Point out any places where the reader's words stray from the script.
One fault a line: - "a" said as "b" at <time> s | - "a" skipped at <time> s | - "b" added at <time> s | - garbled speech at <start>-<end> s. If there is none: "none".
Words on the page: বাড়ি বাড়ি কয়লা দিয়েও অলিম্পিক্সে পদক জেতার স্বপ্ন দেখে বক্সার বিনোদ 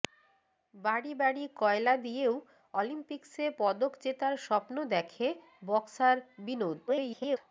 - garbled speech at 6.9-7.4 s